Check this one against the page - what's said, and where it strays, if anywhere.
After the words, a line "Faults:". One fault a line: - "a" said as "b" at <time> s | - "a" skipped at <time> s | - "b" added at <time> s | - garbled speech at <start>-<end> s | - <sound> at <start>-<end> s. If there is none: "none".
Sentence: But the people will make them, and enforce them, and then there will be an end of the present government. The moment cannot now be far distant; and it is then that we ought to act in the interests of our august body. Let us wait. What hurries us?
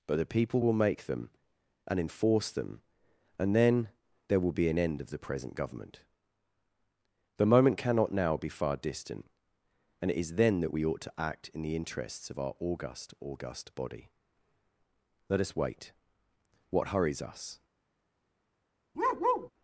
But the people will make them, and enforce them, and then there will be an end of the present government. The moment cannot now be far distant; and it is then that we ought to act in the interests of our august august body. Let us wait. What hurries us?
Faults:
- "august" added at 13.2 s
- bark at 18.9-19.5 s